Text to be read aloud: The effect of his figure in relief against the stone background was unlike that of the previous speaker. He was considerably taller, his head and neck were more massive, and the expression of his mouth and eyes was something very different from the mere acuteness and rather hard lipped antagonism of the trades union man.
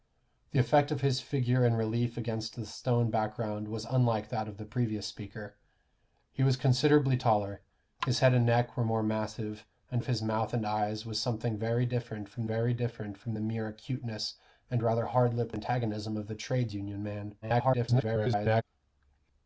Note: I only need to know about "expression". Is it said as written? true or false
false